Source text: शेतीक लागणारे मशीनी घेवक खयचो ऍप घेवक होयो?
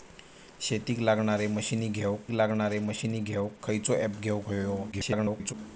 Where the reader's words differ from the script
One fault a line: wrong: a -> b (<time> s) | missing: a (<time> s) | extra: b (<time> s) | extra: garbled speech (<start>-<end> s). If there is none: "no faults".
extra: लागणारे मशीनी घेवक (2.3 s)
extra: garbled speech (4.9-5.5 s)